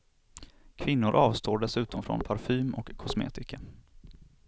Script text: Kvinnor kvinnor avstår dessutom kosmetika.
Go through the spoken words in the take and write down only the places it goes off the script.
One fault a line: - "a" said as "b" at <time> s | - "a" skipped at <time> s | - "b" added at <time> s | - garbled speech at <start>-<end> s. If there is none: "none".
- "kvinnor" skipped at 1.1 s
- "från parfym och" added at 2.0 s